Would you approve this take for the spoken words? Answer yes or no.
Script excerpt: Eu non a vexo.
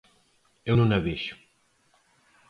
yes